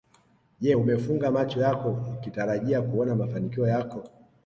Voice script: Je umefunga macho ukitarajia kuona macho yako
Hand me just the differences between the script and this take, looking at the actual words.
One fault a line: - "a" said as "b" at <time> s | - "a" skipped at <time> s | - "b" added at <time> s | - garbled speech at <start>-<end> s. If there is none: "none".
- "yako" added at 1.6 s
- "macho" said as "mafanikio" at 3.2 s